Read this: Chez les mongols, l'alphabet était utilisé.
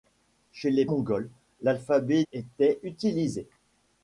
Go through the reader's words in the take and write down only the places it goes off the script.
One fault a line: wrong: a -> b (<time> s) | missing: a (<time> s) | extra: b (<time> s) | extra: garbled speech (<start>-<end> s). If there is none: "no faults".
no faults